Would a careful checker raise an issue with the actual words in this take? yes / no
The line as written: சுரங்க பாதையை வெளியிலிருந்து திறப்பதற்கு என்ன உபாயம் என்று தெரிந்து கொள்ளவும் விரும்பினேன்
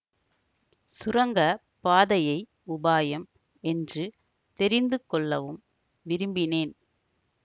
yes